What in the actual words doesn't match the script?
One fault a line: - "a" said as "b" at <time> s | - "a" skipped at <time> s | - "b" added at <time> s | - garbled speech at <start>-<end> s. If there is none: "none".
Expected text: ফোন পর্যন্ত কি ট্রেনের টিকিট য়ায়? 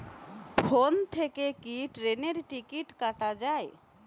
- "পর্যন্ত" said as "থেকে" at 1.1 s
- "কাটা" added at 3.0 s